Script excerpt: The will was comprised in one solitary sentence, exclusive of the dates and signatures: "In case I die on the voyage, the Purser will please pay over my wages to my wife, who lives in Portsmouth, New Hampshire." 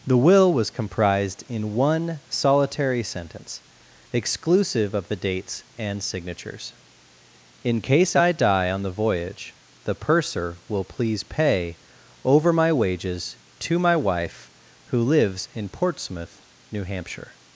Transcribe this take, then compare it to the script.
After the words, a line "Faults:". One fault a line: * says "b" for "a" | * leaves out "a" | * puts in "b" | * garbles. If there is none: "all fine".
The will was comprised in one solitary sentence, exclusive of the dates and signatures: "In case I die on the voyage, the Purser will please pay over my wages to my wife, who lives in Portsmouth, New Hampshire."
Faults:
all fine